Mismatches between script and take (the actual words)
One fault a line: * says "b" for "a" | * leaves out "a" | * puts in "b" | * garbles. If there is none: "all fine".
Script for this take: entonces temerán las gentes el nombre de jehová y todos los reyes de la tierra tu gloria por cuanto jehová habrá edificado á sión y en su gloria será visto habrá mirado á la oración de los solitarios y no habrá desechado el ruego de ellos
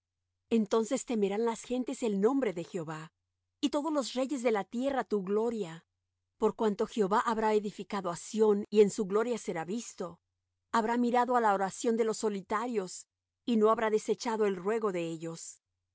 all fine